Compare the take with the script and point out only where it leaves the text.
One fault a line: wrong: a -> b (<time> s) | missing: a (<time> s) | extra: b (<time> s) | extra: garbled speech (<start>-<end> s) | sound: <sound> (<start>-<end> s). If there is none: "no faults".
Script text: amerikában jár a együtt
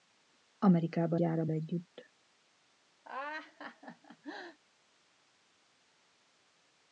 sound: laugh (3.0-4.6 s)